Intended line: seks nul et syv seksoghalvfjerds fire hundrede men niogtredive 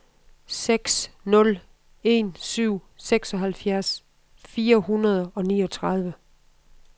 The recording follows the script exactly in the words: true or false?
false